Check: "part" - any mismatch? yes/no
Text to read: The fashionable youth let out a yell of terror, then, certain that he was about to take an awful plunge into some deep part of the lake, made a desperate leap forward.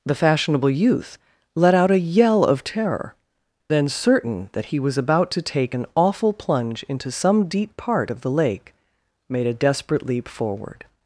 no